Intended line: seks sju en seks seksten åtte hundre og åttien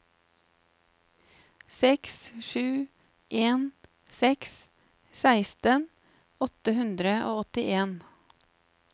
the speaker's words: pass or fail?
pass